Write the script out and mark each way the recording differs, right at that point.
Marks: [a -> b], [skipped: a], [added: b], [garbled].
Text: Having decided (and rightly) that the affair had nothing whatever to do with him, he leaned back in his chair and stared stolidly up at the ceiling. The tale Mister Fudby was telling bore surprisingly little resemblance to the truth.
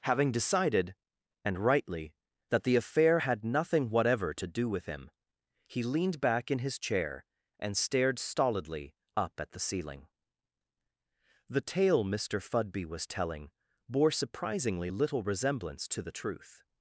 Having decided (and rightly) that the affair had nothing whatever to do with him, he leaned back in his chair and stared stolidly up at the ceiling. The tale Mister Fudby was telling bore surprisingly little resemblance to the truth.